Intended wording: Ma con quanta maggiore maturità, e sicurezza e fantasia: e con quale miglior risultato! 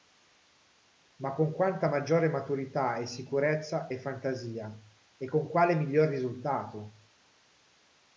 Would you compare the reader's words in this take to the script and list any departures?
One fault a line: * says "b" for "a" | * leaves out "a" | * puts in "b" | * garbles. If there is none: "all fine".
all fine